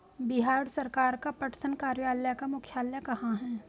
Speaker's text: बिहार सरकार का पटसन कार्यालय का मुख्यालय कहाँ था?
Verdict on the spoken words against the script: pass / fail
fail